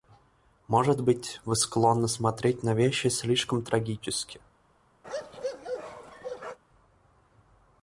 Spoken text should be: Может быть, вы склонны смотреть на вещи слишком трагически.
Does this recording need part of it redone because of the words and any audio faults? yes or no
yes